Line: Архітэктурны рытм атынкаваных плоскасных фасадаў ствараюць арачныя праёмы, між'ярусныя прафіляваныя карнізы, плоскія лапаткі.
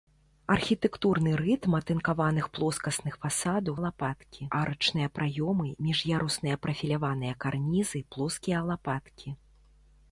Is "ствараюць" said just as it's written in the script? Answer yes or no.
no